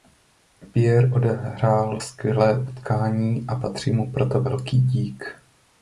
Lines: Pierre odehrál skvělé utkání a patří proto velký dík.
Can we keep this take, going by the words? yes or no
no